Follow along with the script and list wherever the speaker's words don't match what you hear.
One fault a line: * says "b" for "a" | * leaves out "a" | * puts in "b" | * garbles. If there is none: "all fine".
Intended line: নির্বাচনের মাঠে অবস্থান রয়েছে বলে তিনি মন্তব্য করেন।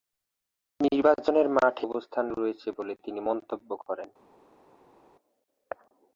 all fine